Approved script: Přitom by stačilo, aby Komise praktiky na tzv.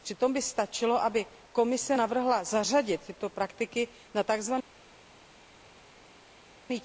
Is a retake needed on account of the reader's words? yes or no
yes